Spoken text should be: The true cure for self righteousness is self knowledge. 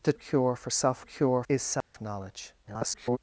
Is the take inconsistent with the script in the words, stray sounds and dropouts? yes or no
yes